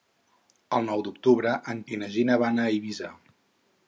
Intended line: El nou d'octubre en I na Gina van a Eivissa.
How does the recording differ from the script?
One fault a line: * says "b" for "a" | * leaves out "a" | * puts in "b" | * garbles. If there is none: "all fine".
all fine